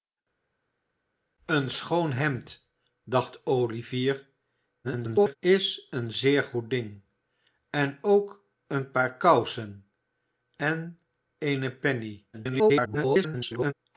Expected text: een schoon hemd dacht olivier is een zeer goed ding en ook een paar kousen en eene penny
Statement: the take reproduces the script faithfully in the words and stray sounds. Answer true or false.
false